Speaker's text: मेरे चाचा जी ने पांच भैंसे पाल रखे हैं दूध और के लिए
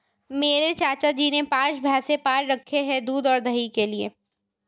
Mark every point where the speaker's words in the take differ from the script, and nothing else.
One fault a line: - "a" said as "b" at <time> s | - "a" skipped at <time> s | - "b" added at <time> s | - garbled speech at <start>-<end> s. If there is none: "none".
- "दही" added at 3.4 s